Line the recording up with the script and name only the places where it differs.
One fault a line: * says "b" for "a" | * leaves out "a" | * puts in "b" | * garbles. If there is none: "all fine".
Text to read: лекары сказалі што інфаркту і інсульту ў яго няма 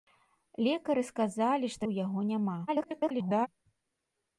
* leaves out "інфаркту і інсульту"
* garbles